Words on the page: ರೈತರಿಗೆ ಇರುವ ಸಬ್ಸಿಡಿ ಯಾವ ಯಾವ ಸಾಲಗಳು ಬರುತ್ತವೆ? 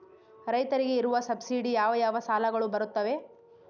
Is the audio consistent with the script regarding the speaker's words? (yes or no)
yes